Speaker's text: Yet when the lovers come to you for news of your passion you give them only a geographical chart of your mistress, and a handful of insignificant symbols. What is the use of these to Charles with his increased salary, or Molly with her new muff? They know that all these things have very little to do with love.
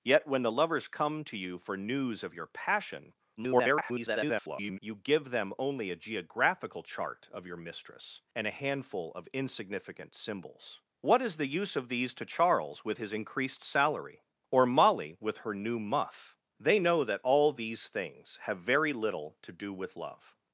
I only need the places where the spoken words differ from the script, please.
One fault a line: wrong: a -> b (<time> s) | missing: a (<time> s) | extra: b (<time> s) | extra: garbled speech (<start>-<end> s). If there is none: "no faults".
extra: garbled speech (3.4-4.8 s)